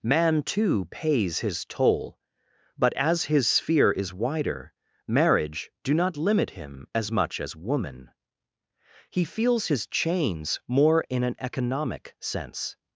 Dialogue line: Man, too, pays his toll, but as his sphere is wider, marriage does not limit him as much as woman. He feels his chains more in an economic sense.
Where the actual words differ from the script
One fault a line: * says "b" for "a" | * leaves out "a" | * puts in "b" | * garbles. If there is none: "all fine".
* says "do" for "does"